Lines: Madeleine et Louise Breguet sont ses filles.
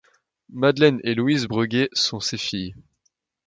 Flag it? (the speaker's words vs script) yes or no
no